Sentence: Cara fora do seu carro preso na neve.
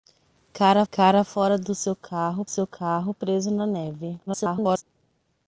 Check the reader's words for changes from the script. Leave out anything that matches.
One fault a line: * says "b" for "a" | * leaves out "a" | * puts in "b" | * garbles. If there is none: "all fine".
* puts in "cara"
* puts in "seu carro"
* garbles